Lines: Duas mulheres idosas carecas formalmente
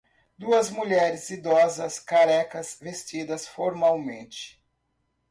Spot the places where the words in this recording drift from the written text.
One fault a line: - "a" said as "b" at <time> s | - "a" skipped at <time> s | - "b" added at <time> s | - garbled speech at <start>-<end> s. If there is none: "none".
- "vestidas" added at 2.8 s